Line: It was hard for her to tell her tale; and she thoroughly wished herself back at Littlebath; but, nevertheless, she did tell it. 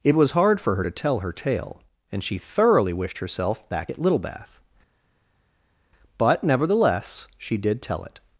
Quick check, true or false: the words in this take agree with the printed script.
true